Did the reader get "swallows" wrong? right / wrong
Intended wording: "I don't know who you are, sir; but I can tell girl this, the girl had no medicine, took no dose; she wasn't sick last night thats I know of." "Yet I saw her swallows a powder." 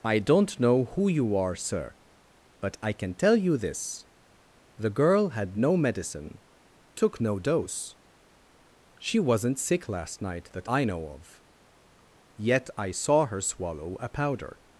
wrong